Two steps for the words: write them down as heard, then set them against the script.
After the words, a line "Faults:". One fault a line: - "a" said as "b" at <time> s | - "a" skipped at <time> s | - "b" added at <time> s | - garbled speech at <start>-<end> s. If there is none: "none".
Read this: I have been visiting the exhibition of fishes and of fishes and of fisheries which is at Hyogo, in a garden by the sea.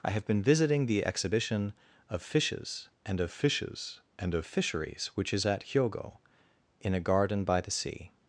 I have been visiting the exhibition of fishes and of fishes and of fisheries which is at Hyogo, in a garden by the sea.
Faults:
none